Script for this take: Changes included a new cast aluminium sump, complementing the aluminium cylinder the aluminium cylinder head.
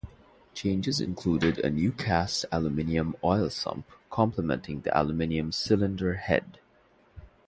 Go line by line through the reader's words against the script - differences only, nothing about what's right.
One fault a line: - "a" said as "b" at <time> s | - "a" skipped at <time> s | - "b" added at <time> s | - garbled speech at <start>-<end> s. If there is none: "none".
- "oil" added at 3.2 s
- "the aluminium cylinder" skipped at 6.2 s